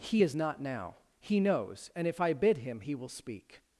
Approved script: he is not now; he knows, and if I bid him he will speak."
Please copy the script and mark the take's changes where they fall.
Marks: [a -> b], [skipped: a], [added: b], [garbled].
he is not now; he knows, and if I bid him he will speak."